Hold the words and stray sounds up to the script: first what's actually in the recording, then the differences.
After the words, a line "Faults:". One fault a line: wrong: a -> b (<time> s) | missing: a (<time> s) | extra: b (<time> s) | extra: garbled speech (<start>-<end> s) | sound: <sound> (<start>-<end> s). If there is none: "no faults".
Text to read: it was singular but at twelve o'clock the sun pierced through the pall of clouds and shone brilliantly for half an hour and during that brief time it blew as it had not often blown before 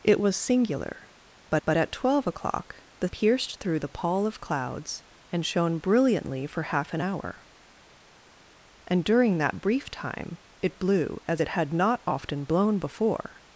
it was singular but but at twelve o'clock the pierced through the pall of clouds and shone brilliantly for half an hour and during that brief time it blew as it had not often blown before
Faults:
extra: but (1.7 s)
missing: sun (3.1 s)